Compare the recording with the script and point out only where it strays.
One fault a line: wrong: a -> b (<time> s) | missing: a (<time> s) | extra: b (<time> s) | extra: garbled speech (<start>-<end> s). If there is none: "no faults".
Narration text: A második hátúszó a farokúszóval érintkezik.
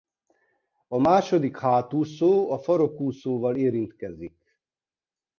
no faults